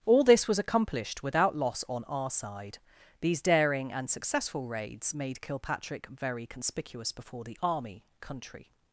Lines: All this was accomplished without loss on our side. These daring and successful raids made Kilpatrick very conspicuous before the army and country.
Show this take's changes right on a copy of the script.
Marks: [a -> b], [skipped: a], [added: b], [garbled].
All this was accomplished without loss on our side. These daring and successful raids made Kilpatrick very conspicuous before the army [skipped: and] country.